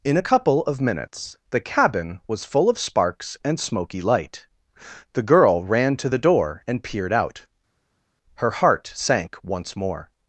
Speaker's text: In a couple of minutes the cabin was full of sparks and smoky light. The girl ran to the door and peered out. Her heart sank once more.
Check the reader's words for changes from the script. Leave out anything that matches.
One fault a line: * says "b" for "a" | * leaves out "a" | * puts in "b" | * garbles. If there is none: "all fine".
all fine